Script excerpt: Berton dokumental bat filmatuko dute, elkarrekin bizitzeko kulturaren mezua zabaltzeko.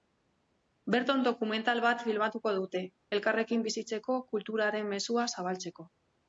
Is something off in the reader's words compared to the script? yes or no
no